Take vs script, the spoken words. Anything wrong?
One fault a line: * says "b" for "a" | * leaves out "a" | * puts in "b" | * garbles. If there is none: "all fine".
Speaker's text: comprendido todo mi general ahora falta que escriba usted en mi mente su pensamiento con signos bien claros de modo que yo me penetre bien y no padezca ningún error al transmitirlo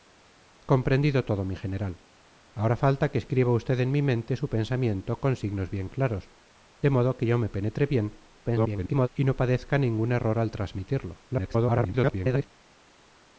* garbles
* garbles